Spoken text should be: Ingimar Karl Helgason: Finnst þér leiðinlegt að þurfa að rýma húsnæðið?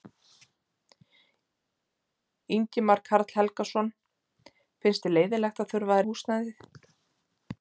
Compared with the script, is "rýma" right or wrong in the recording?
wrong